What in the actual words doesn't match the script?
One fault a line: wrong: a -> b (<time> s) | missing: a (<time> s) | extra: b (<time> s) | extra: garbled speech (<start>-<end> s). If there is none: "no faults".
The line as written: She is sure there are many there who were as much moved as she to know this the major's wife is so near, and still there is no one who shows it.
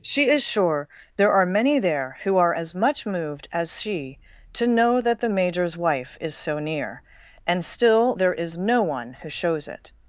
wrong: were -> are (2.4 s)
wrong: this -> that (5.0 s)